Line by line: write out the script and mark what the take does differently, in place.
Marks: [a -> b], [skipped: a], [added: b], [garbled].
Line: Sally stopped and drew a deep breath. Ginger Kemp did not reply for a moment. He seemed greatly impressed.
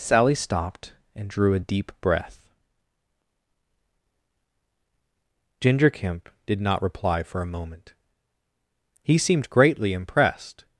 Sally stopped and drew a deep breath. Ginger Kemp did not reply for a moment. He seemed greatly impressed.